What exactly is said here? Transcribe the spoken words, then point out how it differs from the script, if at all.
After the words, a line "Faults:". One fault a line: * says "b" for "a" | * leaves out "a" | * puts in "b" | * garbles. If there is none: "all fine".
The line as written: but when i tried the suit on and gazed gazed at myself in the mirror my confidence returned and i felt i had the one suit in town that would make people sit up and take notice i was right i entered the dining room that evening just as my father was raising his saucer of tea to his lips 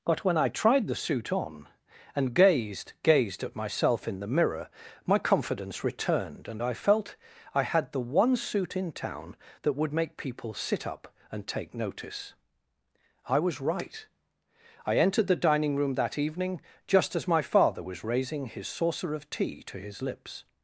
but when i tried the suit on and gazed gazed at myself in the mirror my confidence returned and i felt i had the one suit in town that would make people sit up and take notice i was right i entered the dining room that evening just as my father was raising his saucer of tea to his lips
Faults:
all fine